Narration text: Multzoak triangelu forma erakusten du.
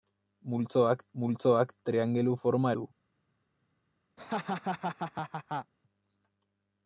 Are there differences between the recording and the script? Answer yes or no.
yes